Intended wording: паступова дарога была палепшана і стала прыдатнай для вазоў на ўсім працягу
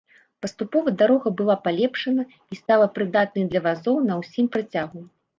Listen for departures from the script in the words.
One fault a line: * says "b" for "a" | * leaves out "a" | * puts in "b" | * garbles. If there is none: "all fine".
all fine